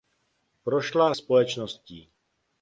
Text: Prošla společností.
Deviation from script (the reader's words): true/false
false